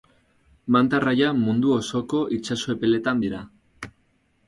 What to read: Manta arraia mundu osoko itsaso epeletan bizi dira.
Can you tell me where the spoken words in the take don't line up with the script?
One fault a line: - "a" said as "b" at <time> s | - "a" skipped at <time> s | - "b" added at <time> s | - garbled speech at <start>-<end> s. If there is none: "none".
- "bizi" skipped at 3.2 s